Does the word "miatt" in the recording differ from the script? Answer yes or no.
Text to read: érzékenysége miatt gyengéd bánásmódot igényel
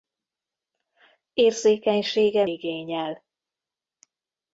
yes